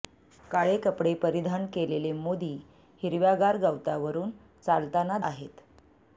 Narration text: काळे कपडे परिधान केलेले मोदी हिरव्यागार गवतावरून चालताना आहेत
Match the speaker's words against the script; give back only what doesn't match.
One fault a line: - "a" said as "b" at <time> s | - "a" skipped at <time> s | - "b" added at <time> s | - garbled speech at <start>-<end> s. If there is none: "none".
none